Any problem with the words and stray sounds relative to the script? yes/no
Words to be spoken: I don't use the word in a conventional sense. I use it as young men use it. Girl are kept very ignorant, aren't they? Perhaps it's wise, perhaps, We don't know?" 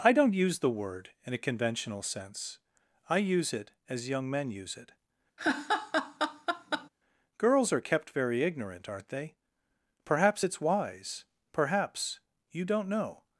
yes